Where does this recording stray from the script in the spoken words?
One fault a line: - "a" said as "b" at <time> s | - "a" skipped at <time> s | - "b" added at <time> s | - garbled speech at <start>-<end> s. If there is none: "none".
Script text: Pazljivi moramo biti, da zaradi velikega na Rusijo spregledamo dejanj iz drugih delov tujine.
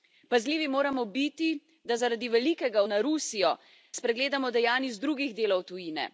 none